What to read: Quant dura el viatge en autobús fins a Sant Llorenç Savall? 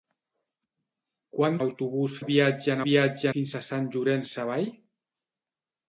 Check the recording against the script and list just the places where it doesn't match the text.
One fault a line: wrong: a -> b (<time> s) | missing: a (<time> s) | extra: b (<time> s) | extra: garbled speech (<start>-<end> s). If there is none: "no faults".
wrong: dura -> autobús (1.6 s)
wrong: autobús -> viatge (2.8 s)